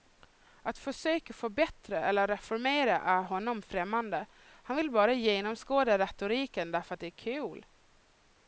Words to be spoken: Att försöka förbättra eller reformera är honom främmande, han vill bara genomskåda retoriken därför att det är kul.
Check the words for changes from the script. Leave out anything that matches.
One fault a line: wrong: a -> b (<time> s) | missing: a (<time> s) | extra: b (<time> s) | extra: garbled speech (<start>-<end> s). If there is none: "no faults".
no faults